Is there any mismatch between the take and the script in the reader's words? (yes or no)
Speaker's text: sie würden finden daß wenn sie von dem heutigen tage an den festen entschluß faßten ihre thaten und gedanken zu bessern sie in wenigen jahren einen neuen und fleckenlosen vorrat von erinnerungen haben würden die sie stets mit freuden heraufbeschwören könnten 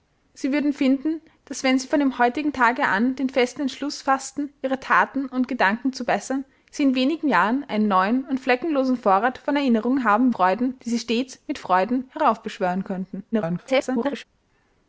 yes